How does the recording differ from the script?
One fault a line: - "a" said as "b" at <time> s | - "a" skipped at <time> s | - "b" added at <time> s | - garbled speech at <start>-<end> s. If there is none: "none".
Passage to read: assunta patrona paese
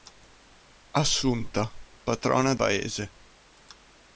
none